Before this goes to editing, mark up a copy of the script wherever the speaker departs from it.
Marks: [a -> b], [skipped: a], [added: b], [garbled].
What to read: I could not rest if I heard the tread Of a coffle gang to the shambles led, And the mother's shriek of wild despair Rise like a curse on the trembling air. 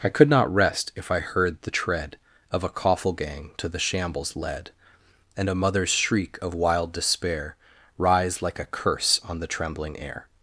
I could not rest if I heard the tread Of a coffle gang to the shambles led, And [the -> a] mother's shriek of wild despair Rise like a curse on the trembling air.